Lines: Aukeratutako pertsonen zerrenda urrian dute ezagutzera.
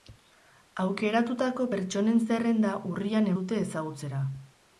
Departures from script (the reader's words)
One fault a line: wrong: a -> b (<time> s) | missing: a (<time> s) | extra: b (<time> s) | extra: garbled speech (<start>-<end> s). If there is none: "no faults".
no faults